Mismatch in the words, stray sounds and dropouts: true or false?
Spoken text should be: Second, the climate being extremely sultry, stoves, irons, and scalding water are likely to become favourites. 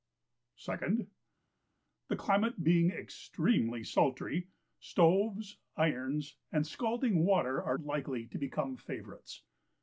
false